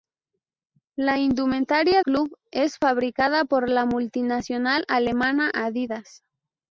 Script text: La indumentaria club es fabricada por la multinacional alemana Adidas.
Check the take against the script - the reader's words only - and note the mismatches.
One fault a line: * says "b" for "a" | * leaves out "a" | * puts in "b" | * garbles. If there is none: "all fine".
all fine